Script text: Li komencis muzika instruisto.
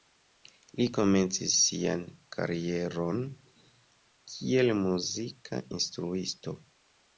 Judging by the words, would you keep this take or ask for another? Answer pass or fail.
fail